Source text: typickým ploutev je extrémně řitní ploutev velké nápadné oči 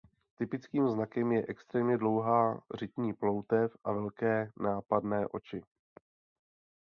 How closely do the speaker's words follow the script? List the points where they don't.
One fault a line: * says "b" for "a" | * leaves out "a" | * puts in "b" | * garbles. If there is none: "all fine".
* says "znakem" for "ploutev"
* puts in "dlouhá"
* puts in "a"